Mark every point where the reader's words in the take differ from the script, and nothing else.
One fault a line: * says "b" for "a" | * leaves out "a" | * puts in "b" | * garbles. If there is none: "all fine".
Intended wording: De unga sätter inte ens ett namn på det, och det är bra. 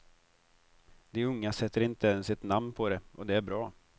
all fine